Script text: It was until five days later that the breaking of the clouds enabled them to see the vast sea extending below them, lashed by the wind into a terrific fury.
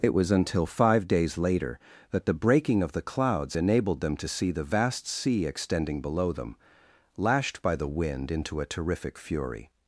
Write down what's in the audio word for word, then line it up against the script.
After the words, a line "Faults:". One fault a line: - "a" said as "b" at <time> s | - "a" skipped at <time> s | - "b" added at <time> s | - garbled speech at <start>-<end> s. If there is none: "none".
It was until five days later that the breaking of the clouds enabled them to see the vast sea extending below them, lashed by the wind into a terrific fury.
Faults:
none